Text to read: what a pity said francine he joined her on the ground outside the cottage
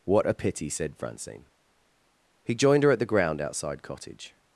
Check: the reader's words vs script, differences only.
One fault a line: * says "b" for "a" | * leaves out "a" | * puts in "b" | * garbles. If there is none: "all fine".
* says "at" for "on"
* leaves out "the"